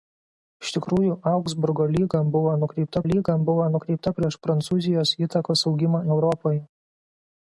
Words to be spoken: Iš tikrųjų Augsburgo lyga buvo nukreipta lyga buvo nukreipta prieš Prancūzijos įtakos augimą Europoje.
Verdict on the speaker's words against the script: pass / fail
pass